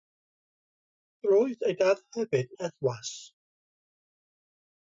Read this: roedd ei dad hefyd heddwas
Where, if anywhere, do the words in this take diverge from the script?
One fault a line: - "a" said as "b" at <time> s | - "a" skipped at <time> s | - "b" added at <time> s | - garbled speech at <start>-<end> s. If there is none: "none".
none